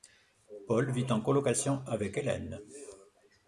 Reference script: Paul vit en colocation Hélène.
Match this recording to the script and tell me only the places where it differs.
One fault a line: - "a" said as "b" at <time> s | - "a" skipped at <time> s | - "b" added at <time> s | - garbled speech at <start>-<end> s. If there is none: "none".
- "avec" added at 1.9 s